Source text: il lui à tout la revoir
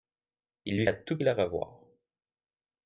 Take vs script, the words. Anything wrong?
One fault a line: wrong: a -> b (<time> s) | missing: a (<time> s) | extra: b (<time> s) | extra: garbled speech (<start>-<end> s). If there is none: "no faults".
no faults